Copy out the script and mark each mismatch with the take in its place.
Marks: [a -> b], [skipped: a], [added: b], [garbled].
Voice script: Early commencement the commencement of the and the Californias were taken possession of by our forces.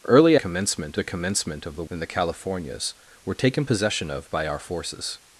Early commencement the commencement of the and the Californias were taken possession of by our forces.